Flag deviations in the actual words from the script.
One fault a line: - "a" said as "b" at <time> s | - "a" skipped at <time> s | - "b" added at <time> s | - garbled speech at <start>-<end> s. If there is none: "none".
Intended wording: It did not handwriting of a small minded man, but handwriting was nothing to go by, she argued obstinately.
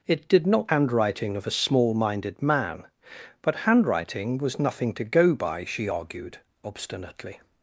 none